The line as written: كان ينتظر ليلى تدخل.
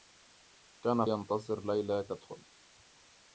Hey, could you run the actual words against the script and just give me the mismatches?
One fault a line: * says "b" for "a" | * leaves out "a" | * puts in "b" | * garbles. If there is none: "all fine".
all fine